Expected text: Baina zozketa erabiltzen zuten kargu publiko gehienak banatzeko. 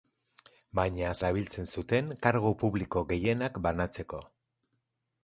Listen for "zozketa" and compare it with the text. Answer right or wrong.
wrong